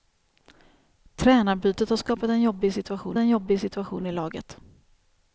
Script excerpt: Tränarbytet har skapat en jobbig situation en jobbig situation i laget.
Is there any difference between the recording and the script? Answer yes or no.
no